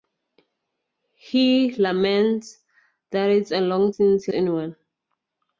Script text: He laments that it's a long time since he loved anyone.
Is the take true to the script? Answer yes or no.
no